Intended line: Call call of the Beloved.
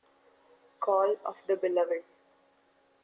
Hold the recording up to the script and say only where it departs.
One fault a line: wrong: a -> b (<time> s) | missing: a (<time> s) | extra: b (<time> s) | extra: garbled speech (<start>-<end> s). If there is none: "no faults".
missing: call (1.1 s)